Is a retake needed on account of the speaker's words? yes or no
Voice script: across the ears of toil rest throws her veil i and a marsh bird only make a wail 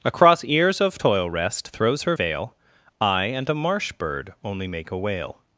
yes